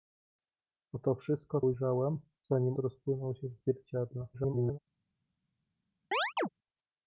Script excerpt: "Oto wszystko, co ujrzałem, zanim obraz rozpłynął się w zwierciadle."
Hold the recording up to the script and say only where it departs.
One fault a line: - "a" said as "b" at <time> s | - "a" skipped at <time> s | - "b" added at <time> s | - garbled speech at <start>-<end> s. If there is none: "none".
- "co" skipped at 1.6 s
- "obraz" skipped at 2.8 s
- garbled speech at 4.3-4.8 s